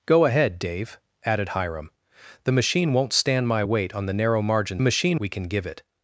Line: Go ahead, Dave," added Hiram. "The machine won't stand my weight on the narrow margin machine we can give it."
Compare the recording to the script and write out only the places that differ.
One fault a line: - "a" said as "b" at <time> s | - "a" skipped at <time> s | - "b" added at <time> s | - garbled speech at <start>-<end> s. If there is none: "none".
none